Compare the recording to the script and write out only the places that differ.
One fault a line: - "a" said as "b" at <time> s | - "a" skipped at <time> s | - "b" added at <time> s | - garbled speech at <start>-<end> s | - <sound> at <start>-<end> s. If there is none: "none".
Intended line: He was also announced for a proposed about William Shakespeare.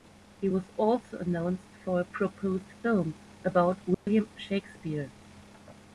- "film" added at 2.8 s
- dropout at 3.9-4.1 s